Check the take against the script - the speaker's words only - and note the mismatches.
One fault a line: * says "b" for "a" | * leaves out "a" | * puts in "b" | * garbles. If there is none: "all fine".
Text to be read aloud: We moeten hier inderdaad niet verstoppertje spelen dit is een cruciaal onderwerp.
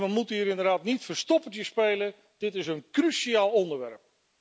all fine